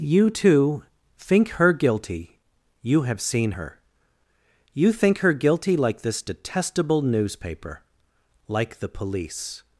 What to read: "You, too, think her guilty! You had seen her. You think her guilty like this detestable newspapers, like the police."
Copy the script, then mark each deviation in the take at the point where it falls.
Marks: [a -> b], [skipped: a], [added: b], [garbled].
"You, too, think her guilty! You [had -> have] seen her. You think her guilty like this detestable [newspapers, -> newspaper] like the police."